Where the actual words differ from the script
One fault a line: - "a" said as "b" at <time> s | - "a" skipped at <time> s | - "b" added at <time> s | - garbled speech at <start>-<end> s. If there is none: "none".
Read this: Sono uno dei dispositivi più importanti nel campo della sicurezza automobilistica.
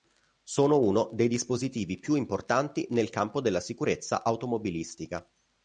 none